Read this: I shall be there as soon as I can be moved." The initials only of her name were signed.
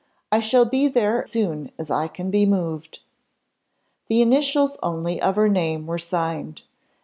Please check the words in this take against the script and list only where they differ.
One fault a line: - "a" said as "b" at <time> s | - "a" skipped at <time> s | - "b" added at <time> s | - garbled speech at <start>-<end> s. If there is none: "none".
- "as" skipped at 1.3 s